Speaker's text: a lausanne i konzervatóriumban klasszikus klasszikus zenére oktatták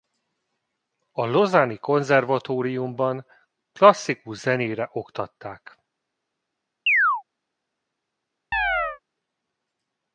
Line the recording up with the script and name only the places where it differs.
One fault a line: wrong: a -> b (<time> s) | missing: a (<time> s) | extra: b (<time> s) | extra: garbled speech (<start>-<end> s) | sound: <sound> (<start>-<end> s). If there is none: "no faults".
missing: klasszikus (4.4 s)
sound: chirp (6.9-7.2 s)
sound: chirp (8.5-9.0 s)